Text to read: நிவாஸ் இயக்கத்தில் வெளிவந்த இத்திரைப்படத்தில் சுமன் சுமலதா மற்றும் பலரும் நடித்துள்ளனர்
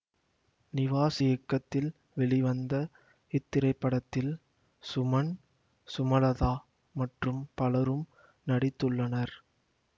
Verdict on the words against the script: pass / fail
pass